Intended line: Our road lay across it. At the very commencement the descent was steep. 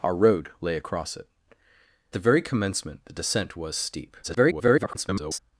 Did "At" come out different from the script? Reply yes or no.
yes